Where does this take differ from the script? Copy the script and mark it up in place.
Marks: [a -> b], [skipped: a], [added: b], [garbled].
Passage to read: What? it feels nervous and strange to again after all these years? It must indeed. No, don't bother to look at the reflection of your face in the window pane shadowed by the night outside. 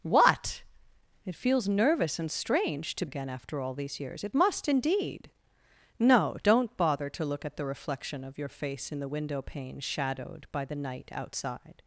What? it feels nervous and strange to again after all these years? It must indeed. No, don't bother to look at the reflection of your face in the window pane shadowed by the night outside.